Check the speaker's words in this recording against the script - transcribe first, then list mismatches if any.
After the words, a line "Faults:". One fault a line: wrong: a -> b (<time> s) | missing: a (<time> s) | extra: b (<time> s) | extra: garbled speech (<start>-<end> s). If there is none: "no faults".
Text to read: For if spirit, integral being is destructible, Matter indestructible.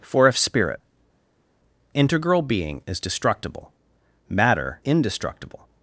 For if spirit, integral being is destructible, Matter indestructible.
Faults:
no faults